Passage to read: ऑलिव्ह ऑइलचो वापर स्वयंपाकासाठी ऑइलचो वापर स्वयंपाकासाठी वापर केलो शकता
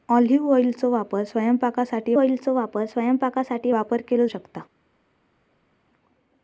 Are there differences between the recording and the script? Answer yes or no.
no